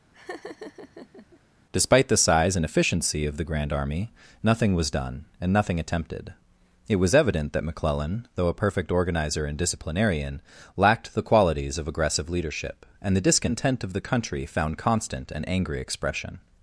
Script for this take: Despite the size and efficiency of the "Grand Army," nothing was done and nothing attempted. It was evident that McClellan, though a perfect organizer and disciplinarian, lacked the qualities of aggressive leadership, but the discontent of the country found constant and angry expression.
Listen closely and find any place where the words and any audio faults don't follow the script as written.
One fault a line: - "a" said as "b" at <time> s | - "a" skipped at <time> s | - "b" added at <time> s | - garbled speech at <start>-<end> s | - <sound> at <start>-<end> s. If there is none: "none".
- laugh at 0.1-1.4 s
- "but" said as "and" at 13.0 s